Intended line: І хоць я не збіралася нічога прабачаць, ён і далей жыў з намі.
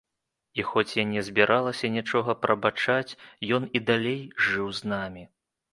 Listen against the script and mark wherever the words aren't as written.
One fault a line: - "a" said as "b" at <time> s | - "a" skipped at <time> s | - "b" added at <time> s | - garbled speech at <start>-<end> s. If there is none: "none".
none